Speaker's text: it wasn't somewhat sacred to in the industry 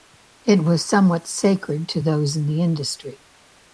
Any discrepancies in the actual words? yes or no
yes